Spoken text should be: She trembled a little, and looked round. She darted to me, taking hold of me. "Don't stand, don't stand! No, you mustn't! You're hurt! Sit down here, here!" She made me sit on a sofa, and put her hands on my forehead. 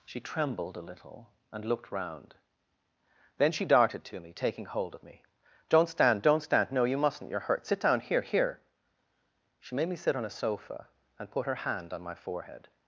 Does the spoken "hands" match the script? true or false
false